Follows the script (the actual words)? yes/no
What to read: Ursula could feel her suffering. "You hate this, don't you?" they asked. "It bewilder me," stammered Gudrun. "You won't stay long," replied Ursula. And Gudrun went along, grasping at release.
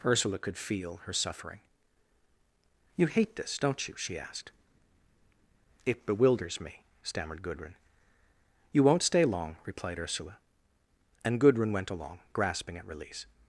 no